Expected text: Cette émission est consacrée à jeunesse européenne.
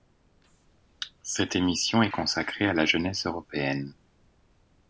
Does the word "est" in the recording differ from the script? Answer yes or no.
no